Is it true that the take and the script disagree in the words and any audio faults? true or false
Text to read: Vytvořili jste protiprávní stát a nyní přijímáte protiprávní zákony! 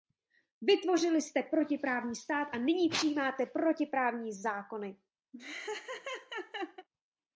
true